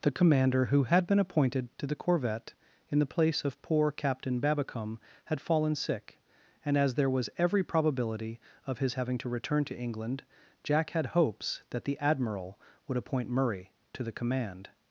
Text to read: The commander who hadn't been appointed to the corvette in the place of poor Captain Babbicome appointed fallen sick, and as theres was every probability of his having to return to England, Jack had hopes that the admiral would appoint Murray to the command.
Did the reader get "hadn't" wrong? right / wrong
wrong